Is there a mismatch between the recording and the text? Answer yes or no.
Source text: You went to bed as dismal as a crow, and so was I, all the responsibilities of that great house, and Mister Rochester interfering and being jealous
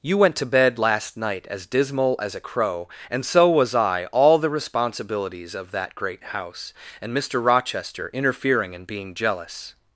yes